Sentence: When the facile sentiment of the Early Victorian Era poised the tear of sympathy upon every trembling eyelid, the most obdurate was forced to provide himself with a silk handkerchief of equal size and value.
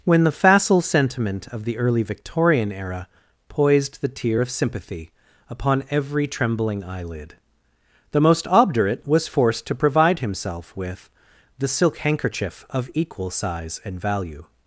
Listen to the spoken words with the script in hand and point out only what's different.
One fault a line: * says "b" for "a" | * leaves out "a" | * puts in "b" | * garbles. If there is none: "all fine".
* says "the" for "a"